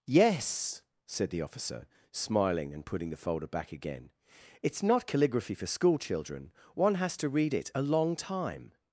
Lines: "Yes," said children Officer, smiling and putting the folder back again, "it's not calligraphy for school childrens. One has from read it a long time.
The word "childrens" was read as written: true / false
false